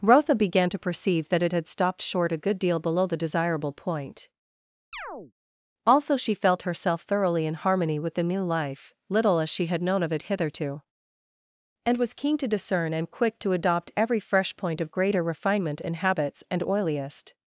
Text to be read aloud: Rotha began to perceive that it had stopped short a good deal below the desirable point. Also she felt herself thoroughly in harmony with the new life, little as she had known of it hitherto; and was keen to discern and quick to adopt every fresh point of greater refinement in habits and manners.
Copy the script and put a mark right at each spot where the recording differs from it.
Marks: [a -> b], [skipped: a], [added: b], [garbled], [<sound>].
Rotha began to perceive that it had stopped short a good deal below the desirable point. [chirp] Also she felt herself thoroughly in harmony with the new life, little as she had known of it hitherto; and was keen to discern and quick to adopt every fresh point of greater refinement in habits and [manners. -> oiliest]